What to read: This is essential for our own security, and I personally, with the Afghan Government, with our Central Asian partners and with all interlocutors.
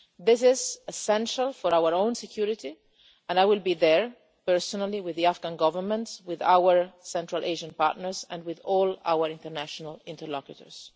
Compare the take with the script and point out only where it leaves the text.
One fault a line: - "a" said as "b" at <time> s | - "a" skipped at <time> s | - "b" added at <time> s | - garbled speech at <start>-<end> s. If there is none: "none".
- "will be there" added at 3.4 s
- "our international" added at 9.0 s